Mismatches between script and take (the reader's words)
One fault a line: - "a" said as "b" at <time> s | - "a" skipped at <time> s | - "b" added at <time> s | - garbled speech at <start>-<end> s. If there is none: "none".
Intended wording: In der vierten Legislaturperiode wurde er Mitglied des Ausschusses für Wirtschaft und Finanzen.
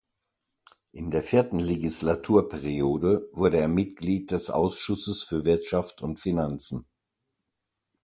none